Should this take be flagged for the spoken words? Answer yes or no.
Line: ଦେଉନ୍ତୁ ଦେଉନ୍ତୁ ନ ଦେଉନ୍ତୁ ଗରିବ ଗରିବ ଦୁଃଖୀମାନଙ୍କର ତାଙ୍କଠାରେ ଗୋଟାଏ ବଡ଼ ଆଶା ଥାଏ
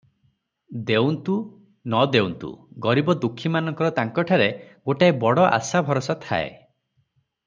yes